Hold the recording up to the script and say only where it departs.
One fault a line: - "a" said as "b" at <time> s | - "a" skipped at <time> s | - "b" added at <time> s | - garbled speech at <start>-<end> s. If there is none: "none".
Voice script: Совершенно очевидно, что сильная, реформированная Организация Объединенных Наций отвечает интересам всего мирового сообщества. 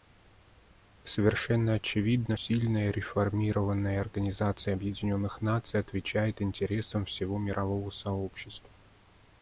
- "что" skipped at 2.4 s